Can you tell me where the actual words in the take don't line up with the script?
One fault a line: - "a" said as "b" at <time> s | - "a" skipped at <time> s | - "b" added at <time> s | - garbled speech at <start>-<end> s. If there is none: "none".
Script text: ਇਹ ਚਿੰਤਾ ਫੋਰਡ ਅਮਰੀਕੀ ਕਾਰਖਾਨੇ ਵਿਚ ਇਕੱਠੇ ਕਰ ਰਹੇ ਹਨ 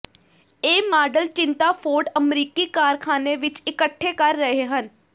- "ਮਾਡਲ" added at 0.9 s